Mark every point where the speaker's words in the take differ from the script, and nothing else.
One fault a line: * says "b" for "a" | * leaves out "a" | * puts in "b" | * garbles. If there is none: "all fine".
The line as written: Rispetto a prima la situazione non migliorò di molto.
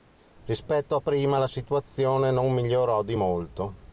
all fine